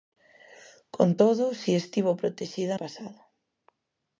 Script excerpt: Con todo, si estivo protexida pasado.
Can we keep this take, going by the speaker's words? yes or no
yes